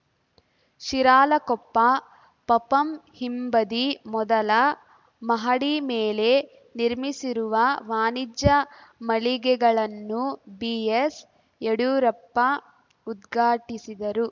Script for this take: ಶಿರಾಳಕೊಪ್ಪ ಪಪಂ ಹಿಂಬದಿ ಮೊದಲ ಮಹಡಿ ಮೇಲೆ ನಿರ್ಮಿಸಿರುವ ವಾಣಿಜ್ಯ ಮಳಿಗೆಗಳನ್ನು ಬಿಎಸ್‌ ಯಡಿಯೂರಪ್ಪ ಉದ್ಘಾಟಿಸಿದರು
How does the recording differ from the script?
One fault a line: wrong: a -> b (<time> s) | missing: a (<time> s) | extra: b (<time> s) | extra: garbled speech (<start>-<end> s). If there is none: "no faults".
no faults